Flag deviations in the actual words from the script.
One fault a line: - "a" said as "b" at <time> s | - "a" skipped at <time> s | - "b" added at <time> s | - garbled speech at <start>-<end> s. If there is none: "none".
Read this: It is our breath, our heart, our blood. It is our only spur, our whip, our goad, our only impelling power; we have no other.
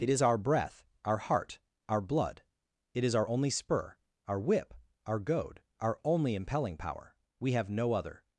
none